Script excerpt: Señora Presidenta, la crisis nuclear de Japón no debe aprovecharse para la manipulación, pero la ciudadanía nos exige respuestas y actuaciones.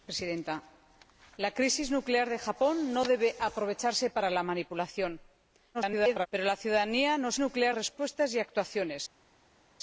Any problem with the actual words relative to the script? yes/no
yes